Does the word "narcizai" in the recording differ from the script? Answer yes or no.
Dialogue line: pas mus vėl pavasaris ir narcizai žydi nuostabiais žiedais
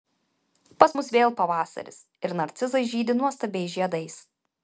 no